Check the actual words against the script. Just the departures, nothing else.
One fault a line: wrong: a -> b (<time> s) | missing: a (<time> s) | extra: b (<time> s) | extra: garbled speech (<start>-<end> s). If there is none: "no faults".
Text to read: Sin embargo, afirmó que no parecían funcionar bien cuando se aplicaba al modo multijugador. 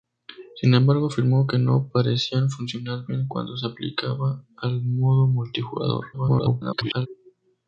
extra: garbled speech (6.1-7.1 s)